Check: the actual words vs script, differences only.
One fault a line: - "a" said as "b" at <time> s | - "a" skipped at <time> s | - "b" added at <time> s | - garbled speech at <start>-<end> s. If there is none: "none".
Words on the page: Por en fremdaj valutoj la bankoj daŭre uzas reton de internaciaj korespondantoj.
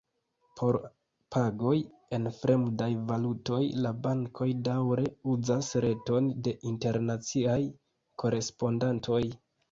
- "pagoj" added at 1.3 s